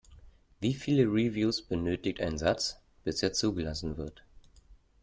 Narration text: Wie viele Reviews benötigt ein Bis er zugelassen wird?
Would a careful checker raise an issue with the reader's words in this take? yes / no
yes